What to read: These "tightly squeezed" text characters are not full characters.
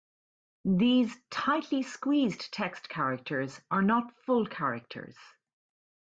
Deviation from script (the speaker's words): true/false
false